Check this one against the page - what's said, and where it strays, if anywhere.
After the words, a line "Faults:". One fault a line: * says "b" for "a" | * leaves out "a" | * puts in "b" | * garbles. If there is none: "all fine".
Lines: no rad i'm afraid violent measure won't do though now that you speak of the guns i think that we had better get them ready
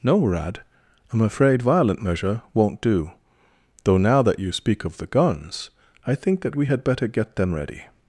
no rad i'm afraid violent measure won't do though now that you speak of the guns i think that we had better get them ready
Faults:
all fine